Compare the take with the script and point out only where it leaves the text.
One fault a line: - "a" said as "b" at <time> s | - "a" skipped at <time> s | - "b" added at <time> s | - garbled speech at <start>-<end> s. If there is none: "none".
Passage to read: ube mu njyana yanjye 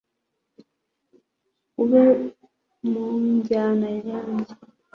none